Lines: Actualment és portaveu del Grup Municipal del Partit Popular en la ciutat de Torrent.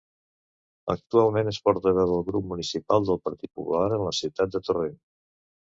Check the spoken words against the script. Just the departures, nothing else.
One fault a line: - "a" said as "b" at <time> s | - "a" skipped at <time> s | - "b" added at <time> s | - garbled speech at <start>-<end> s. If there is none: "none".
none